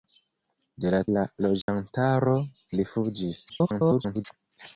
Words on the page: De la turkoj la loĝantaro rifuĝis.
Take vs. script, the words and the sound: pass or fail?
fail